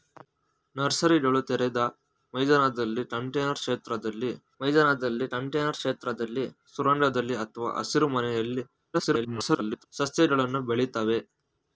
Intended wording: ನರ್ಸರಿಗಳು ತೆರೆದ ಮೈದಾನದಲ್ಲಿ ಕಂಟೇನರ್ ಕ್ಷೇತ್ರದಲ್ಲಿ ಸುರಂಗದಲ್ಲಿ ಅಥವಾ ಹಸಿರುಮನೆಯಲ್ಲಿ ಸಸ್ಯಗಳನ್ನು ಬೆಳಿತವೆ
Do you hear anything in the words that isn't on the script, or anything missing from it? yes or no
yes